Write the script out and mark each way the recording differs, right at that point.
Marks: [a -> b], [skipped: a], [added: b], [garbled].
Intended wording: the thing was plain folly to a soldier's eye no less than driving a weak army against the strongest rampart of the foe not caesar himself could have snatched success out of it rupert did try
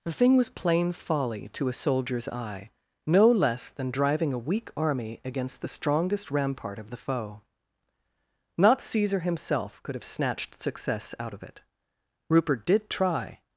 the thing was plain folly to a soldier's eye no less than driving a weak army against the strongest rampart of the foe not caesar himself could have snatched success out of it rupert did try